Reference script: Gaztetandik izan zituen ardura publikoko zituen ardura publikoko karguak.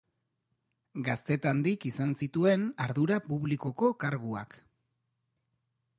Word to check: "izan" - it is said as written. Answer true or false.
true